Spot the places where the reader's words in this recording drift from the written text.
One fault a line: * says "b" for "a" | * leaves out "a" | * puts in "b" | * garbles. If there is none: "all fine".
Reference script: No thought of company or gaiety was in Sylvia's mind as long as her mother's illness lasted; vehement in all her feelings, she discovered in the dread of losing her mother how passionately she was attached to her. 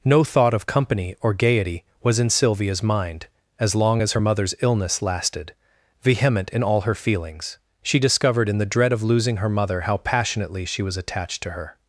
all fine